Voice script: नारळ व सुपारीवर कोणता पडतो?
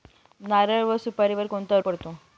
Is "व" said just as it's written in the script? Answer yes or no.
yes